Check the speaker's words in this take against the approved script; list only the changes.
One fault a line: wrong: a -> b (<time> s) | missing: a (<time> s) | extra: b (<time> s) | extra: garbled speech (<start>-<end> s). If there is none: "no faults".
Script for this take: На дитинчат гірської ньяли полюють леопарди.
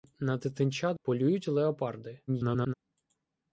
missing: гірської ньяли (1.0 s)
extra: garbled speech (2.3-2.7 s)